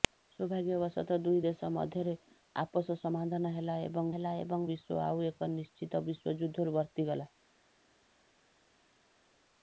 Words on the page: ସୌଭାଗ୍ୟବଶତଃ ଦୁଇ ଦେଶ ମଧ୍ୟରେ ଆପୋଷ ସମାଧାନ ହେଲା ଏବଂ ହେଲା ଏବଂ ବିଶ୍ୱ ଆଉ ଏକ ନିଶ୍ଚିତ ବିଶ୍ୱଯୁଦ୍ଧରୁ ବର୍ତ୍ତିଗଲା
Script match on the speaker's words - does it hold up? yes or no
yes